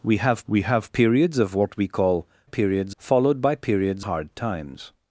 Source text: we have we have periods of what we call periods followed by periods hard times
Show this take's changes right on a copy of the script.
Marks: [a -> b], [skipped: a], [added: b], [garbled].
we have we have periods of what we call periods followed by periods hard times